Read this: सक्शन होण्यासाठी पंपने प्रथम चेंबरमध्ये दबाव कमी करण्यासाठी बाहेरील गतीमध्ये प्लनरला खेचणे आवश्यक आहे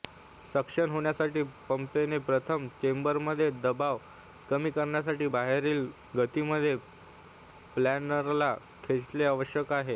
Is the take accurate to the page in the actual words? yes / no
yes